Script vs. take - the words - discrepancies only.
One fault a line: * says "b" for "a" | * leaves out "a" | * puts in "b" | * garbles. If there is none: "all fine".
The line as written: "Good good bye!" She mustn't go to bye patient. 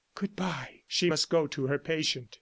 * leaves out "good"
* says "must" for "mustn't"
* says "her" for "bye"